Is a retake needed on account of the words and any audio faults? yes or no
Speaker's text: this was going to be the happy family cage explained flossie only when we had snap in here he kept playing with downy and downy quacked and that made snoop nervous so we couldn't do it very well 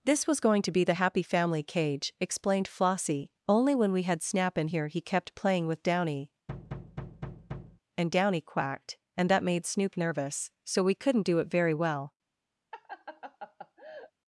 yes